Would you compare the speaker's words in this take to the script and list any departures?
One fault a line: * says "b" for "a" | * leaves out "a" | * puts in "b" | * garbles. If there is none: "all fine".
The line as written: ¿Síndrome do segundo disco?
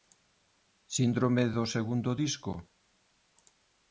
all fine